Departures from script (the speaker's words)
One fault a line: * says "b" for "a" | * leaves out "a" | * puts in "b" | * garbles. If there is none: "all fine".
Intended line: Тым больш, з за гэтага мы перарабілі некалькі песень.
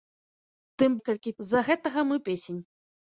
* says "некалькі" for "больш"
* leaves out "перарабілі некалькі"